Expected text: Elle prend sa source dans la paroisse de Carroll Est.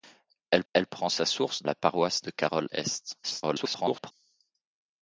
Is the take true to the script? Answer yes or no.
no